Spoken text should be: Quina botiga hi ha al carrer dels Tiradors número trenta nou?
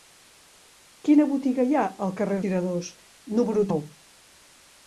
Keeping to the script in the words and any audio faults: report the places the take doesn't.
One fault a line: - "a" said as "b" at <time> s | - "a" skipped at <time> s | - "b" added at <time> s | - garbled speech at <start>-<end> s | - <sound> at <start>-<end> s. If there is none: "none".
- "dels" skipped at 2.4 s
- "trenta" skipped at 3.7 s